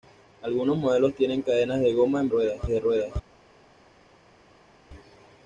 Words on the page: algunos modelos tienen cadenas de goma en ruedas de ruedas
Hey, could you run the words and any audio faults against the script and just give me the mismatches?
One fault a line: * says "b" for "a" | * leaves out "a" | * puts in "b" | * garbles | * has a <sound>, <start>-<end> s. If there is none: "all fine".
all fine